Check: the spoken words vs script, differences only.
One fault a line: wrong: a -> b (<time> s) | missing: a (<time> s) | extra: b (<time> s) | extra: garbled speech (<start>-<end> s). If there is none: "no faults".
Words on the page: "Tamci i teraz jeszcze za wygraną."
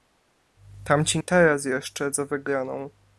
no faults